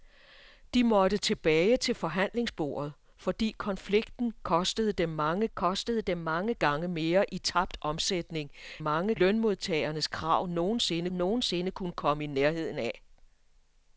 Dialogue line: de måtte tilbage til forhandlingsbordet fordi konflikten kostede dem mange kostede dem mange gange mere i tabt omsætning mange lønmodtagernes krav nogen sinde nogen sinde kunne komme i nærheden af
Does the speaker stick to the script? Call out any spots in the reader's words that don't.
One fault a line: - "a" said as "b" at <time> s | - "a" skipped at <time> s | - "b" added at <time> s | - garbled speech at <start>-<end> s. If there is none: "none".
none